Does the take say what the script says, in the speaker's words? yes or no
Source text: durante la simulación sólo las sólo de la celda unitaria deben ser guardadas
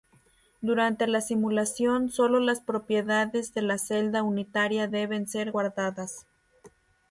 no